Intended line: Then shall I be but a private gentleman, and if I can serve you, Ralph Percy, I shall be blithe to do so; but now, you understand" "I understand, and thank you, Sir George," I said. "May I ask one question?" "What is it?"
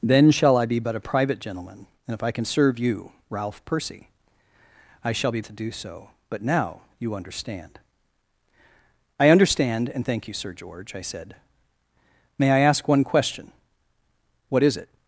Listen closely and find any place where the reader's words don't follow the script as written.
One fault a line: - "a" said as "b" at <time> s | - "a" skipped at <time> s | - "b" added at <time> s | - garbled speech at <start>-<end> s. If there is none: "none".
- "blithe" skipped at 5.4 s